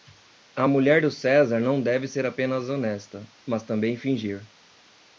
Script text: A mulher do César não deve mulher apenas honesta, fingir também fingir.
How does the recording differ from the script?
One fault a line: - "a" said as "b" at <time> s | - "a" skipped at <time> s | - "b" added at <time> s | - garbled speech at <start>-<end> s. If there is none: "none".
- "mulher" said as "ser" at 2.1 s
- "fingir" said as "mas" at 3.4 s